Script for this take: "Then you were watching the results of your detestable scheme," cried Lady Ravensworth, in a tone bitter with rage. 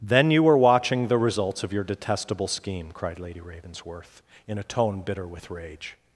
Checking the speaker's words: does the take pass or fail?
pass